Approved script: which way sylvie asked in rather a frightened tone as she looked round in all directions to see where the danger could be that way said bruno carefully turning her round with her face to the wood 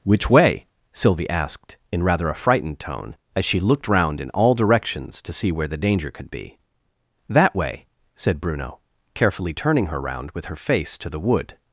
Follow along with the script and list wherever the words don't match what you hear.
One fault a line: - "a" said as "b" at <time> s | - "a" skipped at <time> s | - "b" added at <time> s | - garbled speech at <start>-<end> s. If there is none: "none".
none